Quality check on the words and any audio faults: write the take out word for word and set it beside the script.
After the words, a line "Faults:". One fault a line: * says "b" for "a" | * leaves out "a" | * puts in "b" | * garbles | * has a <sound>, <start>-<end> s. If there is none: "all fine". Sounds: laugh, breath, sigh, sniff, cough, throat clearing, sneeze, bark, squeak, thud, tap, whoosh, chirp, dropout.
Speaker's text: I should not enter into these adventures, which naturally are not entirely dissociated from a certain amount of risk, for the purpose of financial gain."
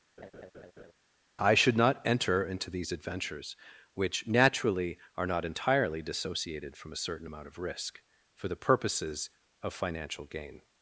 I should not enter into these adventures, which naturally are not entirely dissociated from a certain amount of risk, for the purposes of financial gain."
Faults:
* has a laugh, 0.2-0.9 s
* says "purposes" for "purpose"